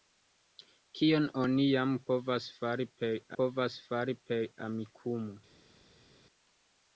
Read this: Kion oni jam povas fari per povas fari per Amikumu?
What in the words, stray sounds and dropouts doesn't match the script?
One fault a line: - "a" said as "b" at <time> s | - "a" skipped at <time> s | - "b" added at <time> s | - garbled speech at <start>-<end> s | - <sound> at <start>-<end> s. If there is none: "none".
none